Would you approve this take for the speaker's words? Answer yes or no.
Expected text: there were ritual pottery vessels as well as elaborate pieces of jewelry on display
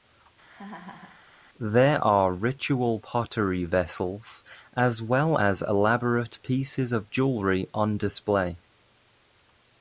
no